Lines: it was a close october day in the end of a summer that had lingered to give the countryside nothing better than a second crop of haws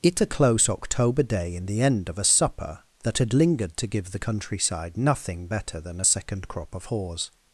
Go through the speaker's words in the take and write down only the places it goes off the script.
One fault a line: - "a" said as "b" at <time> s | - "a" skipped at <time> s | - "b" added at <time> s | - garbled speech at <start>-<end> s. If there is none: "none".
- "was" skipped at 0.2 s
- "summer" said as "supper" at 2.2 s